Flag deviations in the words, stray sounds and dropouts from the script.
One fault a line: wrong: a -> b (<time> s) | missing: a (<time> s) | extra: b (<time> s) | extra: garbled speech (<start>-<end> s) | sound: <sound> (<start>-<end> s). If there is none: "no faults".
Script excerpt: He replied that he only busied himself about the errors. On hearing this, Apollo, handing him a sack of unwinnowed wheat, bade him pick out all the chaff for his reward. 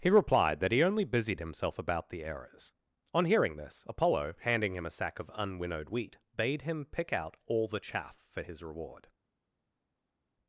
no faults